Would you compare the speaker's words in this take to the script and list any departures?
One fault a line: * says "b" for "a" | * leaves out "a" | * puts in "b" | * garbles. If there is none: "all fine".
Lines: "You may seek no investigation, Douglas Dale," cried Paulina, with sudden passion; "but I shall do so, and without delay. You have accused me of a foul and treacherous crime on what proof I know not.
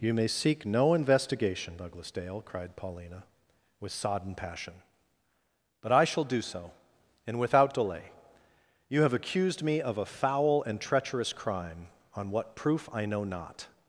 * says "sodden" for "sudden"